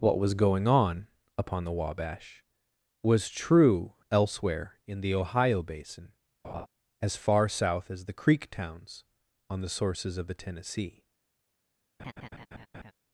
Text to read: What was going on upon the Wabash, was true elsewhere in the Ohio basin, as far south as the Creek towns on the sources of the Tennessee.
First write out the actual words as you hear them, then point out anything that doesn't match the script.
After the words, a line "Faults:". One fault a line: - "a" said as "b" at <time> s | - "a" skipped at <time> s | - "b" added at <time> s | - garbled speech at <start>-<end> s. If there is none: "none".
What was going on upon the Wabash, was true elsewhere in the Ohio basin, as far south as the Creek towns on the sources of the Tennessee.
Faults:
none